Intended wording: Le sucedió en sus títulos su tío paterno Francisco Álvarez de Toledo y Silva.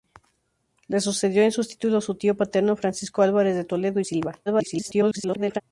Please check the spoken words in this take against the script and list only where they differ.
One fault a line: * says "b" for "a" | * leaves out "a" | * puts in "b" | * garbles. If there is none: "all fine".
* garbles